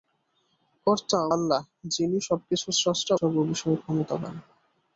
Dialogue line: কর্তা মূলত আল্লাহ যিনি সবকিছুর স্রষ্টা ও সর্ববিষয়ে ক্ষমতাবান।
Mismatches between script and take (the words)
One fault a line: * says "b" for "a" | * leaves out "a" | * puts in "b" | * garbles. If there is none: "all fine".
* leaves out "মূলত"
* leaves out "ও"